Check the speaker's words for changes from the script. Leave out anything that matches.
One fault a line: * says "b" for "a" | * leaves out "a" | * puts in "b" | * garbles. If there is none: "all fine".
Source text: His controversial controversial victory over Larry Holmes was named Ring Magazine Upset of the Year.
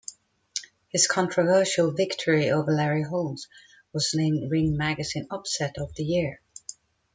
* leaves out "controversial"